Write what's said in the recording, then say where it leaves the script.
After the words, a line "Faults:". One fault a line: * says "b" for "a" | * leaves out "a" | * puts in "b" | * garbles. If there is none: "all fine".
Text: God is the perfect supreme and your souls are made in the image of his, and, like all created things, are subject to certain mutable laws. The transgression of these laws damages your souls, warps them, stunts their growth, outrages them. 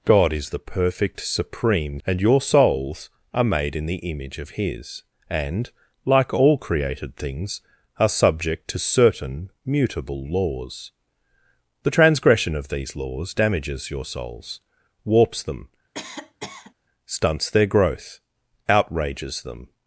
God is the perfect supreme and your souls are made in the image of his, and, like all created things, are subject to certain mutable laws. The transgression of these laws damages your souls, warps them, stunts their growth, outrages them.
Faults:
all fine